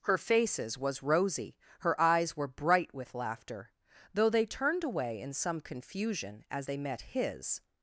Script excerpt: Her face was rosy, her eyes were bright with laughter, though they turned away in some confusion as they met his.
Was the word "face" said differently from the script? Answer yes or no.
yes